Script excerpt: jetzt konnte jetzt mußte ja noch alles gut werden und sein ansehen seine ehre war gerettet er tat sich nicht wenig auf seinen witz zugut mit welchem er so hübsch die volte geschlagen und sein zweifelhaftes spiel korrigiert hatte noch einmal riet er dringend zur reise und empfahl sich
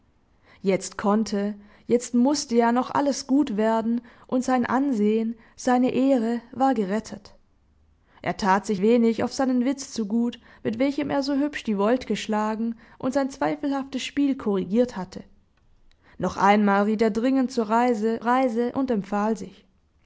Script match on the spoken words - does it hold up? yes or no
no